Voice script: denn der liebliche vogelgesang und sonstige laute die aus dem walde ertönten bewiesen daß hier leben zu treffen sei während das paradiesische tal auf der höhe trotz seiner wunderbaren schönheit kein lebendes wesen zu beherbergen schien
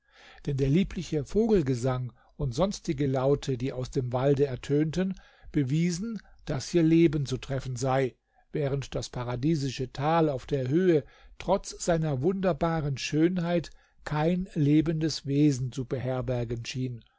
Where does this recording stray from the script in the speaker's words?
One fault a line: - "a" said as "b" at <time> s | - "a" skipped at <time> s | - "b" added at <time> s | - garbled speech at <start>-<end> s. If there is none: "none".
none